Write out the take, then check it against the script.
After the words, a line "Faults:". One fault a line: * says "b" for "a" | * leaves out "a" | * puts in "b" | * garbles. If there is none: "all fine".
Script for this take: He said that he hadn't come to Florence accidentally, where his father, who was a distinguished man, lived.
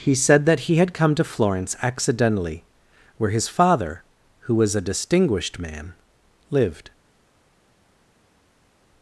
He said that he had come to Florence accidentally, where his father, who was a distinguished man, lived.
Faults:
* says "had" for "hadn't"